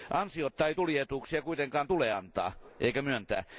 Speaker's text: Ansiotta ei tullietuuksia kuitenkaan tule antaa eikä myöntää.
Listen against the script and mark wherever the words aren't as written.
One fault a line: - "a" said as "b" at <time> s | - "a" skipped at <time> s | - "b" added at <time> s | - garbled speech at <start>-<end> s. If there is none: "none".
none